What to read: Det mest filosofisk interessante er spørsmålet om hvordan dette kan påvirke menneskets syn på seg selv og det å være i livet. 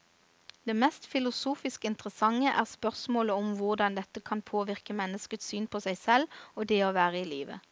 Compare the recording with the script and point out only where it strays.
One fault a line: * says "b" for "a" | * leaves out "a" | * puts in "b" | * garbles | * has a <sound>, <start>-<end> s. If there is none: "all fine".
all fine